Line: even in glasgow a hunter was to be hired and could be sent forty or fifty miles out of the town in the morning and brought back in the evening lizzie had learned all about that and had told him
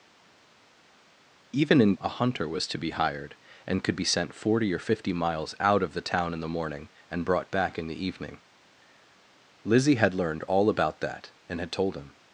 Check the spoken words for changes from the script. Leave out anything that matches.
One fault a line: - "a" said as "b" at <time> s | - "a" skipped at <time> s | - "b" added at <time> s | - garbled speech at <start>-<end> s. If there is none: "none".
- "glasgow" skipped at 2.0 s